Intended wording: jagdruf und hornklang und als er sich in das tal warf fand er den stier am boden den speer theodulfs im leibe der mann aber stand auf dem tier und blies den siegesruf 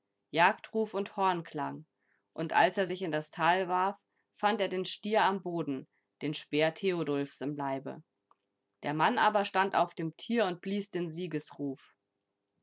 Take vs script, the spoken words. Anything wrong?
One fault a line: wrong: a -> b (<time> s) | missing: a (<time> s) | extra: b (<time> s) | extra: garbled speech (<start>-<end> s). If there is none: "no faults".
no faults